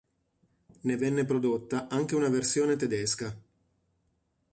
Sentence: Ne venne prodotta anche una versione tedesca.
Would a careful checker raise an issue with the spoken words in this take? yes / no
no